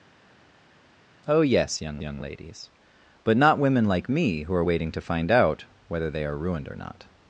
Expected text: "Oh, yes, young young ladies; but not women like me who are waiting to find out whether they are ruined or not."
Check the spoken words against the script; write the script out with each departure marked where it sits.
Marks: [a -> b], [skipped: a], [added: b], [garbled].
"Oh, yes, young young ladies; but not women like me who are waiting to find out whether they are ruined or not."